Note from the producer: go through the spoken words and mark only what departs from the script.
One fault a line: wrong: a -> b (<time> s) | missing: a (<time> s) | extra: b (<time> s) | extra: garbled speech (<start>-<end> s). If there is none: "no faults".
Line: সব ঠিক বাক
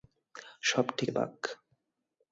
no faults